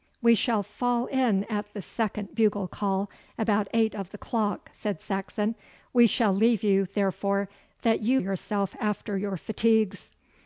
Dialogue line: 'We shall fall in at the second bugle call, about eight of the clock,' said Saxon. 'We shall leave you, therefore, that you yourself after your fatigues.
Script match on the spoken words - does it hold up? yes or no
yes